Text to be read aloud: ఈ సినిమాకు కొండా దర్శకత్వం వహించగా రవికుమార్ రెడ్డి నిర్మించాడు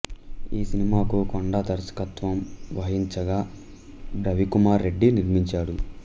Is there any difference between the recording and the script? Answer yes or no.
no